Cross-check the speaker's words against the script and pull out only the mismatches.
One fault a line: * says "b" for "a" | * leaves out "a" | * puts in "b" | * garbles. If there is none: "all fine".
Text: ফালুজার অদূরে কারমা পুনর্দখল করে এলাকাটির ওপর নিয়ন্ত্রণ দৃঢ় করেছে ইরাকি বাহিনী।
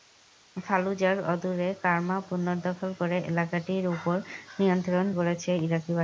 * leaves out "দৃঢ়"